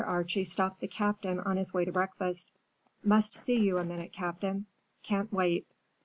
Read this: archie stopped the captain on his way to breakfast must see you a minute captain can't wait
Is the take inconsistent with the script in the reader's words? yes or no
no